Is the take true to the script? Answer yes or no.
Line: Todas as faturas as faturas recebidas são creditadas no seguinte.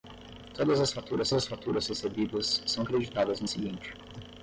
yes